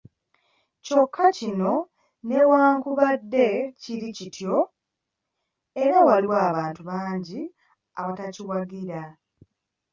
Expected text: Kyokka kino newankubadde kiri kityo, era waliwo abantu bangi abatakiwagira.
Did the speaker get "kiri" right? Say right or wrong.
right